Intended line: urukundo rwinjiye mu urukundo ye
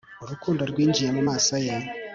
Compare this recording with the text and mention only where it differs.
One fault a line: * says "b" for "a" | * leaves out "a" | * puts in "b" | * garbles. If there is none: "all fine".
* says "maso" for "urukundo"